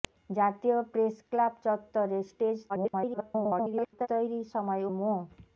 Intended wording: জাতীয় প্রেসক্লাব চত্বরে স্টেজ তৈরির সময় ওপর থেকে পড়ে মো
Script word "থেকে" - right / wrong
wrong